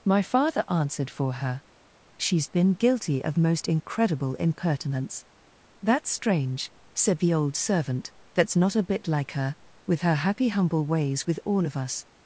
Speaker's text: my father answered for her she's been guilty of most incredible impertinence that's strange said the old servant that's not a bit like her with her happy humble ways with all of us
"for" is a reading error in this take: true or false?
false